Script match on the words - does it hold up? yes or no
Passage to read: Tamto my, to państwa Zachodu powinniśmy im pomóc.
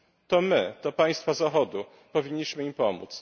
no